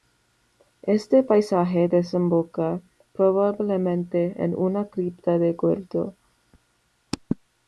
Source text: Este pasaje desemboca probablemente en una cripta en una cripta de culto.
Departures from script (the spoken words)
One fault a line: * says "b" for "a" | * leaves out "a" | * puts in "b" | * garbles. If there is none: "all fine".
* leaves out "en una cripta"